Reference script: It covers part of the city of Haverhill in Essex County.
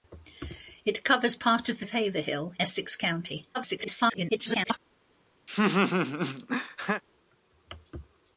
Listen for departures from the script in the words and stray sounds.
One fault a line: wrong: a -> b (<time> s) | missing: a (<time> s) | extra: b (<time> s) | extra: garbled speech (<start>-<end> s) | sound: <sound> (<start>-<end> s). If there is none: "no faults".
missing: city (1.9 s)
missing: in (2.5 s)
extra: garbled speech (3.5-4.8 s)
sound: laugh (5.5-7.0 s)